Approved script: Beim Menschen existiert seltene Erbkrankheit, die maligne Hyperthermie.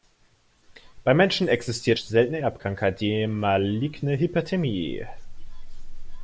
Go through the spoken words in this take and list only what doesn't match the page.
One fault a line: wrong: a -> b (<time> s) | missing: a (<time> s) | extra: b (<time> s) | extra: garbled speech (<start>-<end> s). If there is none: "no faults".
no faults